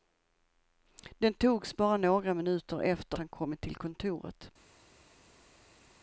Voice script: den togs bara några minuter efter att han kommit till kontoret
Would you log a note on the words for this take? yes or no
yes